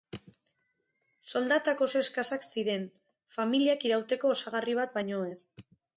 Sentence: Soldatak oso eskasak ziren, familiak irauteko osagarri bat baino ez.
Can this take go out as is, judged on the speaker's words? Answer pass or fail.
pass